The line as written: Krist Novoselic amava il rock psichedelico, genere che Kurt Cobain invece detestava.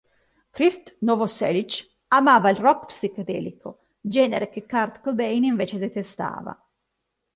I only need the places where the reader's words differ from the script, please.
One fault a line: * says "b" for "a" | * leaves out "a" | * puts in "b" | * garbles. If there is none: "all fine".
all fine